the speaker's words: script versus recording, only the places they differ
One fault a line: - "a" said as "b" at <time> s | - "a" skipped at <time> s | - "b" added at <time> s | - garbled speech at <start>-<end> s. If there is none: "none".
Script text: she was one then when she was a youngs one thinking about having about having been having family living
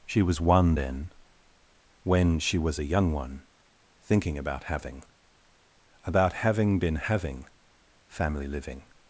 - "youngs" said as "young" at 2.8 s